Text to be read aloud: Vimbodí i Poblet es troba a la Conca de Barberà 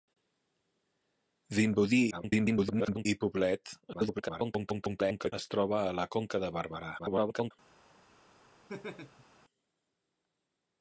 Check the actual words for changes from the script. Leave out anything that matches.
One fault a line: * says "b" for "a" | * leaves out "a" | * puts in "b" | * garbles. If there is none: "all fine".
* garbles
* garbles
* garbles